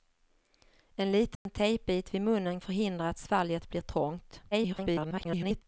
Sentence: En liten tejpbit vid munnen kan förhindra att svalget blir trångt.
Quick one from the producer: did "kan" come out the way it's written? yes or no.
no